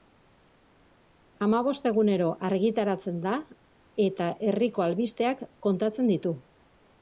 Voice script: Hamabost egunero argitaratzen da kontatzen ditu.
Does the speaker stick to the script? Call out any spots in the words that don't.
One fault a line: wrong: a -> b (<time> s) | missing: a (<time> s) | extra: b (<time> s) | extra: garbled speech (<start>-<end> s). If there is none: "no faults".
extra: eta herriko albisteak (4.1 s)